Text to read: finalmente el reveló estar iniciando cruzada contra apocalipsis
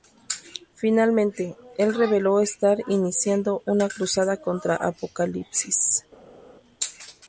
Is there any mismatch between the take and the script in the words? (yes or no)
yes